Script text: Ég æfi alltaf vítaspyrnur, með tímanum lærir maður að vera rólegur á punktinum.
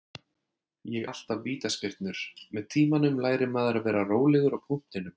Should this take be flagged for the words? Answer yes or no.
yes